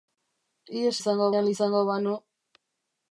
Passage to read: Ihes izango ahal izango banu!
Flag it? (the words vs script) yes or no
no